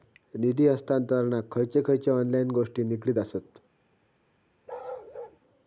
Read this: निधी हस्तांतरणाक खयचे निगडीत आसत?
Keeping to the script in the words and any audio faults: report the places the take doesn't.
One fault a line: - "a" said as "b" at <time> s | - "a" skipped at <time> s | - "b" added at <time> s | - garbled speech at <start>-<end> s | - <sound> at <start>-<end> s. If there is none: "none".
- "खयचे ऑनलाइन गोष्टी" added at 1.9 s
- bark at 4.7-5.4 s